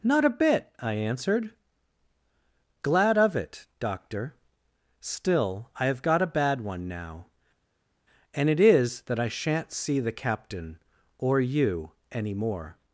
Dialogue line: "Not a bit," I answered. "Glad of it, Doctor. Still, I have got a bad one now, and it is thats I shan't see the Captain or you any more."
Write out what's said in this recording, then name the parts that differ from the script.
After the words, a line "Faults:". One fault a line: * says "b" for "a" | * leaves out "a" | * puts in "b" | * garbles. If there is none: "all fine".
"Not a bit," I answered. "Glad of it, Doctor. Still, I have got a bad one now, and it is that I shan't see the Captain or you any more."
Faults:
* says "that" for "thats"